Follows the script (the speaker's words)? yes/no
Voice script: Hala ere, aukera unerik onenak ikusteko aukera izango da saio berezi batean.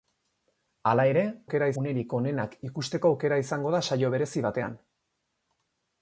yes